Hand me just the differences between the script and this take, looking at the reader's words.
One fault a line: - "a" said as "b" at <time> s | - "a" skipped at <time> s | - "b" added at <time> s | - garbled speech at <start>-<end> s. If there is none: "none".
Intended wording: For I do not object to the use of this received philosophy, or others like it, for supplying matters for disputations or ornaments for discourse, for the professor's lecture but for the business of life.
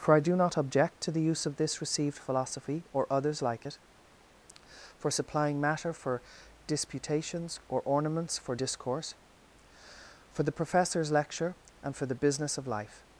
- "matters" said as "matter" at 5.6 s
- "but" said as "and" at 11.8 s